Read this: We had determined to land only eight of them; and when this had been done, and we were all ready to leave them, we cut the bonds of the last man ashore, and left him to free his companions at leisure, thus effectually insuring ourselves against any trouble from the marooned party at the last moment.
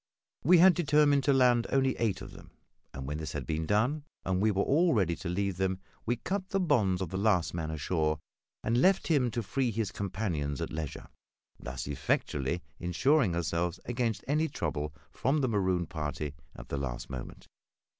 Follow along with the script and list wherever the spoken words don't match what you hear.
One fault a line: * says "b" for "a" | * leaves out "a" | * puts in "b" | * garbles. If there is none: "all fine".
all fine